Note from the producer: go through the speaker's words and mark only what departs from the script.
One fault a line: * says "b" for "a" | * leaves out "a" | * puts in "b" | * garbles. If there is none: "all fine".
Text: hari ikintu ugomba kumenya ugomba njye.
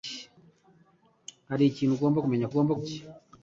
all fine